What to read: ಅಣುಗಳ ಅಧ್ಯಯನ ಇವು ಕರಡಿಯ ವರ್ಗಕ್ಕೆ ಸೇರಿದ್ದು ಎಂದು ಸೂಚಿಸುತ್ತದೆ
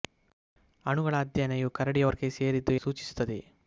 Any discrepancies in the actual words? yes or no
yes